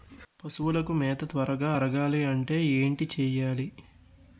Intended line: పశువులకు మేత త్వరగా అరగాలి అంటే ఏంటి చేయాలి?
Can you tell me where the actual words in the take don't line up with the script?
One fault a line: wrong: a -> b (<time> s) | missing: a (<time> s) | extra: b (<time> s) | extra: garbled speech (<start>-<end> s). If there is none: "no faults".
no faults